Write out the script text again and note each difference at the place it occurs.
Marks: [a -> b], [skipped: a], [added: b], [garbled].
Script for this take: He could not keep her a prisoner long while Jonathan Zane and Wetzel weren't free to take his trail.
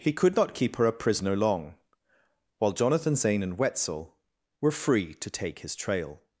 He could not keep her a prisoner long while Jonathan Zane and Wetzel [weren't -> were] free to take his trail.